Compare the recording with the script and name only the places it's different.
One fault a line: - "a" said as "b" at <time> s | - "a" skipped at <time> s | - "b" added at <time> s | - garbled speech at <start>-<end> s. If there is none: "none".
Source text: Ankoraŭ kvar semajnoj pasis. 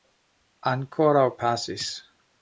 - "kvar semajnoj" skipped at 1.3 s